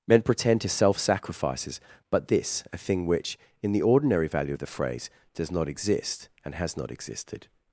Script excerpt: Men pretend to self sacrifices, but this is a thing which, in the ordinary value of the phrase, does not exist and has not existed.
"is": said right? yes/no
no